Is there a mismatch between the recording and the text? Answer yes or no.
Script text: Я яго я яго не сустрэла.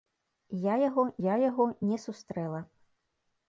no